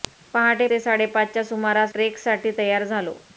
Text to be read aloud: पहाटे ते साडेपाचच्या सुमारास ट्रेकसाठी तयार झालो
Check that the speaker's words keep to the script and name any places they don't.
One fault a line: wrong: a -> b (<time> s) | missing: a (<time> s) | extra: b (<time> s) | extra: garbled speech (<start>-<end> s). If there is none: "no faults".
no faults